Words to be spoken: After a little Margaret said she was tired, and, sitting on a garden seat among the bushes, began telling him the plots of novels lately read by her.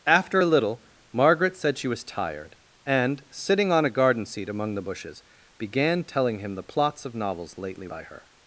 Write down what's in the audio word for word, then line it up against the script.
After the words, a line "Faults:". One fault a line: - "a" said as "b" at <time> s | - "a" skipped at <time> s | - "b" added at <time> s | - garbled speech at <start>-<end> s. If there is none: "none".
After a little Margaret said she was tired, and, sitting on a garden seat among the bushes, began telling him the plots of novels lately by her.
Faults:
- "read" skipped at 7.9 s